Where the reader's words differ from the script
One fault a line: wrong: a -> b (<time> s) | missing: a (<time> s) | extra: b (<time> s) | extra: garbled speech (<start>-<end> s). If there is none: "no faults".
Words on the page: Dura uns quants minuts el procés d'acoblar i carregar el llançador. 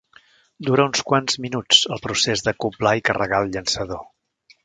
no faults